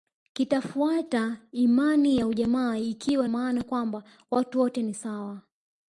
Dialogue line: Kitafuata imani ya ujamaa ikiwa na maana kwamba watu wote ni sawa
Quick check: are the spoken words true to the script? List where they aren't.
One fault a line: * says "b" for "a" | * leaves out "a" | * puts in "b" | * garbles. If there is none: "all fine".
* leaves out "na"